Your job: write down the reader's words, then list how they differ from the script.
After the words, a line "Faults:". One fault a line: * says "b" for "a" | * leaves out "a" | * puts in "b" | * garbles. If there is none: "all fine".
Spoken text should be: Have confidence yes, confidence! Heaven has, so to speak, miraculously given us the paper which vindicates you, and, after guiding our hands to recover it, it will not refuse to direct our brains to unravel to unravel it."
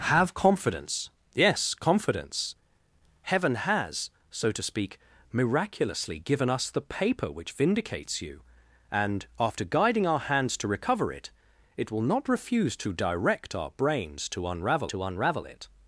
Have confidence yes, confidence! Heaven has, so to speak, miraculously given us the paper which vindicates you, and, after guiding our hands to recover it, it will not refuse to direct our brains to unravel to unravel it."
Faults:
all fine